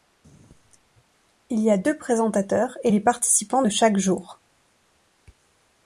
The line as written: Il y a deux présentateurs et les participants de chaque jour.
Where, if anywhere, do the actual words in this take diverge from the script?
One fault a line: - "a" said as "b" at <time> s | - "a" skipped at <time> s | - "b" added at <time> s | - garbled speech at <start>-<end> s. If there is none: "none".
none